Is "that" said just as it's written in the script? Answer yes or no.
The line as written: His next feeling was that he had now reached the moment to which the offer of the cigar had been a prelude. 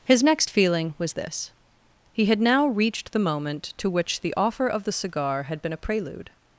no